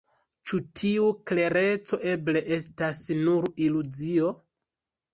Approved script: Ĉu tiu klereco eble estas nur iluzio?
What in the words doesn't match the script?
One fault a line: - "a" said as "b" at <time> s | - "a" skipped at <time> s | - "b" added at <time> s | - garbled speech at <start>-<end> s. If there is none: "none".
none